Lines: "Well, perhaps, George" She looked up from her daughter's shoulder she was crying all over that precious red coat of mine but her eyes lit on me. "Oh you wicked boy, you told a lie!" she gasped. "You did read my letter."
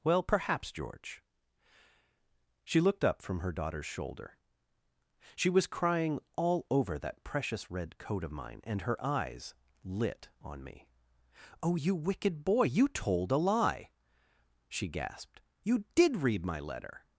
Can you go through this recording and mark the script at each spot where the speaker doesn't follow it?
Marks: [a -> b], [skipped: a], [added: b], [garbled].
"Well, perhaps, George" She looked up from her daughter's shoulder she was crying all over that precious red coat of mine [but -> and] her eyes lit on me. "Oh you wicked boy, you told a lie!" she gasped. "You did read my letter."